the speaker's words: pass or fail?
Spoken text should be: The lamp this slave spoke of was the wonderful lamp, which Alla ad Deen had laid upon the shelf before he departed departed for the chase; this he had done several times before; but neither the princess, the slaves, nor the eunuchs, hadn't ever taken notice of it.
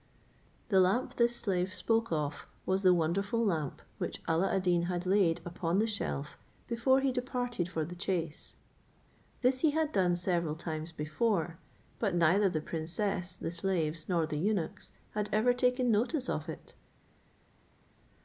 fail